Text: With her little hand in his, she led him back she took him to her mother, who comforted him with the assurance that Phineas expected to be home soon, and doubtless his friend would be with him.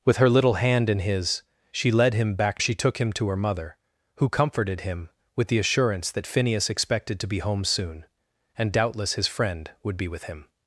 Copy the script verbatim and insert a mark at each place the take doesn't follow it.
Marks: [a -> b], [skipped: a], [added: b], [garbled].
With her little hand in his, she led him back she took him to her mother, who comforted him with the assurance that Phineas expected to be home soon, and doubtless his friend would be with him.